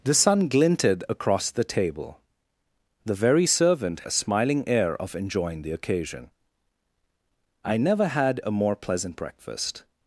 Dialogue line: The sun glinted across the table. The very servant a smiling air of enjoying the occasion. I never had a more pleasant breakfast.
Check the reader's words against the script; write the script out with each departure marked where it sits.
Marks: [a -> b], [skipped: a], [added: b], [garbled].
The sun glinted across the table. The very servant a smiling air of enjoying the occasion. I never had a more pleasant breakfast.